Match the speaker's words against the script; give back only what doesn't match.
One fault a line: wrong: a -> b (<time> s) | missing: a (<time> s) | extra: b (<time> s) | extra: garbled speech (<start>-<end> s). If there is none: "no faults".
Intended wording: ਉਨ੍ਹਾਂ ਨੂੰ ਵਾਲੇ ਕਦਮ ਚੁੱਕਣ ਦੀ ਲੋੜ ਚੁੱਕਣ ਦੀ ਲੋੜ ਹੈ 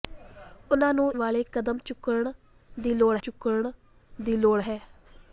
no faults